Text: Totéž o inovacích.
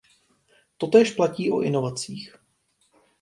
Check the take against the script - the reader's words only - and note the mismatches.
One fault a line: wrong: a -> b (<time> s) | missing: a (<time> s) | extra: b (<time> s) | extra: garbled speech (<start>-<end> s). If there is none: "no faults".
extra: platí (1.1 s)